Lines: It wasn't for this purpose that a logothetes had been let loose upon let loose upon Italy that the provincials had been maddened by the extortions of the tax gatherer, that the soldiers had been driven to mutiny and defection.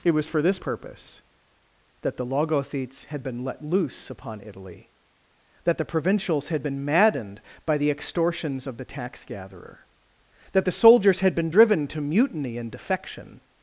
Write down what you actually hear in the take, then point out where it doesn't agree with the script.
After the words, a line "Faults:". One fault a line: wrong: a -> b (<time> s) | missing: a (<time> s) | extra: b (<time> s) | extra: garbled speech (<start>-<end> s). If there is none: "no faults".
It was for this purpose that the logothetes had been let loose upon Italy that the provincials had been maddened by the extortions of the tax gatherer, that the soldiers had been driven to mutiny and defection.
Faults:
wrong: wasn't -> was (0.1 s)
wrong: a -> the (2.2 s)
missing: let loose upon (4.4 s)